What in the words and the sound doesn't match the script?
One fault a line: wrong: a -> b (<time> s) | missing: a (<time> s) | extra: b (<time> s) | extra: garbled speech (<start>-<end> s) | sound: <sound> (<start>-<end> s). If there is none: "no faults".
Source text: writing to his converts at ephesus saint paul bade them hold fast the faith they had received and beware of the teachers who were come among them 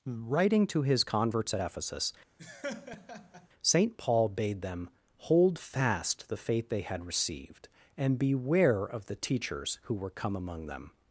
sound: laugh (2.4-3.5 s)